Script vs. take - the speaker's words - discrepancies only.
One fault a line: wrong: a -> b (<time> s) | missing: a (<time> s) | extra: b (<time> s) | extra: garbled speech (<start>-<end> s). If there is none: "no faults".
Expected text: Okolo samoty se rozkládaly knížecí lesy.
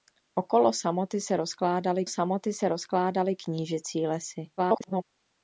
extra: samoty se rozkládaly (2.1 s)
extra: garbled speech (4.6-5.0 s)